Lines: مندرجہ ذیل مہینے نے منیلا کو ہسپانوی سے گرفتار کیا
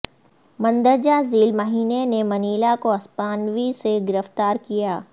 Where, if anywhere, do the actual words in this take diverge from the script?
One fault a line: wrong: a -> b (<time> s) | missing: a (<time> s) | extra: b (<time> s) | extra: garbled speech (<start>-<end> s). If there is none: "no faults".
no faults